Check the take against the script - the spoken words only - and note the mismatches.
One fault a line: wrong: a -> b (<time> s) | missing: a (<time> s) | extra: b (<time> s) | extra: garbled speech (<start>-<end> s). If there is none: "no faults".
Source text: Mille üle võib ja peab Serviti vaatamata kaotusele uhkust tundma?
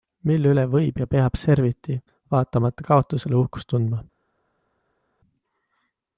no faults